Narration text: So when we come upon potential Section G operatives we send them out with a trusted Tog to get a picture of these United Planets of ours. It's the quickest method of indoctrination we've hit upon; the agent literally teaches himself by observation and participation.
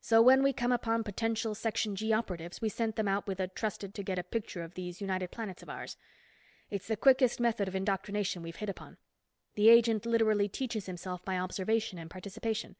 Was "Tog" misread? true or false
true